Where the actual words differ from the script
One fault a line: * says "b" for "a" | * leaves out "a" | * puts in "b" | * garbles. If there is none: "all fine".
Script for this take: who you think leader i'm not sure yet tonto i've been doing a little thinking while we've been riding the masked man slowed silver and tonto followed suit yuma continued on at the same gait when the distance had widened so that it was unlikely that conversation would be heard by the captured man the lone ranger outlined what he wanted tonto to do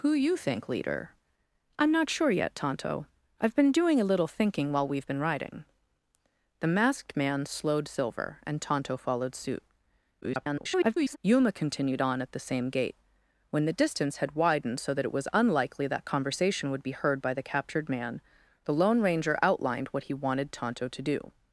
* garbles